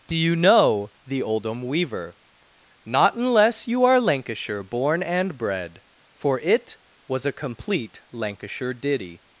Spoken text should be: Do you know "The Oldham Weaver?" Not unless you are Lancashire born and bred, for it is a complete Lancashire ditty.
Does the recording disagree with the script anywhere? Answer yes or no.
yes